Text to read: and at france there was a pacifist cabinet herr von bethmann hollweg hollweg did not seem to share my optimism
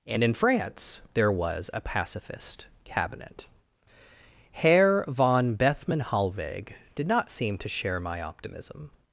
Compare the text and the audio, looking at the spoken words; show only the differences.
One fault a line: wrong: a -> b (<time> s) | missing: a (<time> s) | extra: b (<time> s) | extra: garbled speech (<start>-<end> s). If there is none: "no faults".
wrong: at -> in (0.2 s)
missing: hollweg (6.7 s)